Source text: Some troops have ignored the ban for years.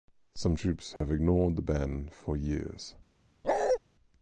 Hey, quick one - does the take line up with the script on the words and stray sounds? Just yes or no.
no